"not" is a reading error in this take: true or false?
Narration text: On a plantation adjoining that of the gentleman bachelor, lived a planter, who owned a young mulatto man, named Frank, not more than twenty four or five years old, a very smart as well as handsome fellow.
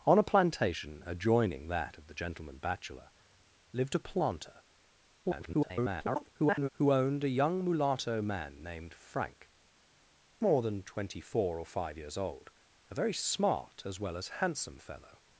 true